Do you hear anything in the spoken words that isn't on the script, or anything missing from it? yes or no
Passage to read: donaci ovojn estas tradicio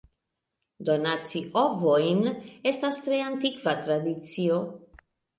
yes